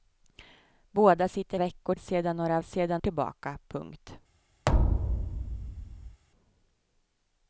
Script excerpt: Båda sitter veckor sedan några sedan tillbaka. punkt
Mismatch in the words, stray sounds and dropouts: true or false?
true